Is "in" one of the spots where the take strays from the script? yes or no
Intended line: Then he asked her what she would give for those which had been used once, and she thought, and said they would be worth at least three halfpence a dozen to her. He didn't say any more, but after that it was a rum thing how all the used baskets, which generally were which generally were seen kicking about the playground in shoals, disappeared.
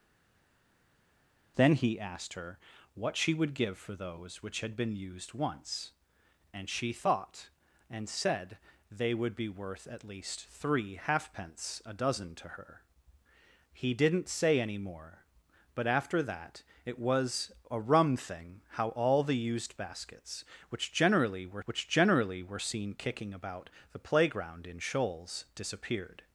no